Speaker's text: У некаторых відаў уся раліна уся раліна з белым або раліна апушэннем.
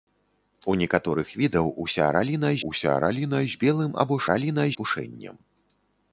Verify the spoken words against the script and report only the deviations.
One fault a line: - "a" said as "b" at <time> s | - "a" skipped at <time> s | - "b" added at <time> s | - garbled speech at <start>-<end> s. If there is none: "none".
none